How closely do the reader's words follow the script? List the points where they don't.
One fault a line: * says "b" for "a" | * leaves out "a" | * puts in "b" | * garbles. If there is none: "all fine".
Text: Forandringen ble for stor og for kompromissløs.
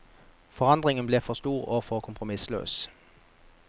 all fine